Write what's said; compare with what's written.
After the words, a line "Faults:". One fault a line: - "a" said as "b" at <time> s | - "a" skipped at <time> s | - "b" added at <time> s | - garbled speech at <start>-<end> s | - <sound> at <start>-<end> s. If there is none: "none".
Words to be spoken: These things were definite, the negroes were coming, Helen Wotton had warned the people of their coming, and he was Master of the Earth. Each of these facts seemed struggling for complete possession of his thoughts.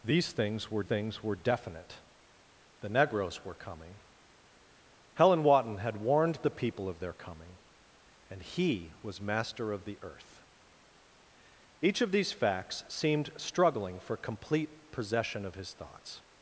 These things were things were definite, the negroes were coming, Helen Wotton had warned the people of their coming, and he was Master of the Earth. Each of these facts seemed struggling for complete possession of his thoughts.
Faults:
- "things were" added at 0.8 s